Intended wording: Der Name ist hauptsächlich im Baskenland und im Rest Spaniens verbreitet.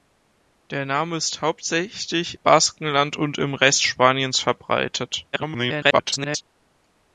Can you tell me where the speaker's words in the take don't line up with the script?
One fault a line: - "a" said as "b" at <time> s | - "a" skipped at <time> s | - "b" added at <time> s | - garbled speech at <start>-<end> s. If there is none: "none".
- "im" skipped at 2.4 s
- garbled speech at 5.3-6.4 s